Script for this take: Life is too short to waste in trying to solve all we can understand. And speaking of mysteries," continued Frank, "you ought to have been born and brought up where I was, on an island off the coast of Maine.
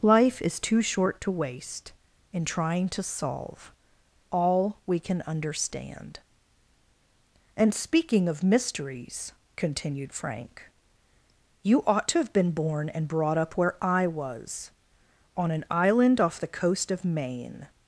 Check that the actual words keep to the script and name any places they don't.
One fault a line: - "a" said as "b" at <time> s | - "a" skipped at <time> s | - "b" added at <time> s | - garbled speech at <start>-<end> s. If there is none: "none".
none